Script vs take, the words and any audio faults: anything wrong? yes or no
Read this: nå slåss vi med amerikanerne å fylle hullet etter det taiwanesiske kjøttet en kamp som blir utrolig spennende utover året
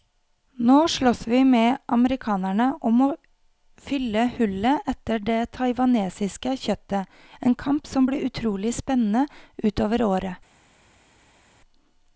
yes